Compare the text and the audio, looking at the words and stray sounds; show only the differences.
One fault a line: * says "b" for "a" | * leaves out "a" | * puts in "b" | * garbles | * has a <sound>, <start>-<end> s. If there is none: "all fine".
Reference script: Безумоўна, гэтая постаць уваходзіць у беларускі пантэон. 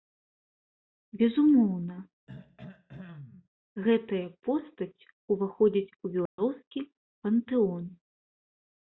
* has a throat clearing, 2.3-3.5 s
* has a dropout, 6.3-6.4 s